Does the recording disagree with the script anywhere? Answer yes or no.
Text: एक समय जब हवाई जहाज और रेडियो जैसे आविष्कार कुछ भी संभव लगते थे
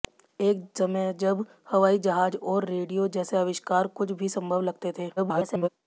yes